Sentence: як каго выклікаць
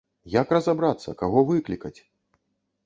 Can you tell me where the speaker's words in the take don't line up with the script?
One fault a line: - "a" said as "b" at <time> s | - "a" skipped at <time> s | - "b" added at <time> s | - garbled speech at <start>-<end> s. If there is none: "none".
- "разабрацца" added at 0.6 s